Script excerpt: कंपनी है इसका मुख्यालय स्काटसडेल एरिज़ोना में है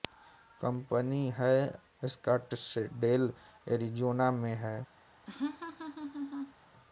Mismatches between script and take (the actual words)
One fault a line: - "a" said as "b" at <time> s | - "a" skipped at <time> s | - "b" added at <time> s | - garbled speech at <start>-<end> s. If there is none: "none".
- "इसका मुख्यालय" skipped at 1.6 s